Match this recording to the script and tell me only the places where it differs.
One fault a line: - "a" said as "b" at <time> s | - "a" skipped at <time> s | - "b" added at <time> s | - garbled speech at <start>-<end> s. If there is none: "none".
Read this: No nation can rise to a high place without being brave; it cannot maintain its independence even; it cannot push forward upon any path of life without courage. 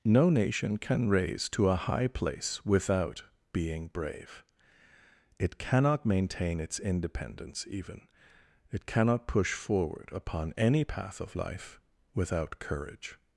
- "rise" said as "raise" at 1.1 s